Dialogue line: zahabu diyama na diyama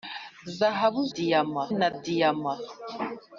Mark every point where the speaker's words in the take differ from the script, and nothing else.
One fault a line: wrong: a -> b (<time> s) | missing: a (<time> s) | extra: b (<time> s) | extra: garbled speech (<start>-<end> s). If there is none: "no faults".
no faults